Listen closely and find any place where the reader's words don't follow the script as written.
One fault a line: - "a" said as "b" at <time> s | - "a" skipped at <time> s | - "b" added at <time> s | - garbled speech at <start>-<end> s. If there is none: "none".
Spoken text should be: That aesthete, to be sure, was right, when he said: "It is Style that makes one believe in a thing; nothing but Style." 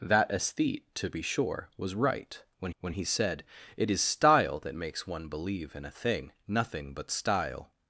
- "when" added at 2.8 s